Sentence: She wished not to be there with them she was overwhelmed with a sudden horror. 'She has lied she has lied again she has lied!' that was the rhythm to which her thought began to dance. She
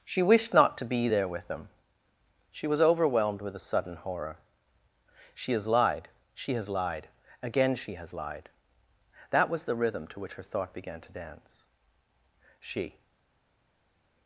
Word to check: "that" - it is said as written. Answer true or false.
true